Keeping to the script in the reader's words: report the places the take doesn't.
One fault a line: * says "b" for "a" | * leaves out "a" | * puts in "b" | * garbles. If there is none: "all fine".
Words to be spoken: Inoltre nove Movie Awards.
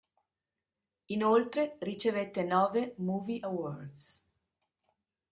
* puts in "ricevette"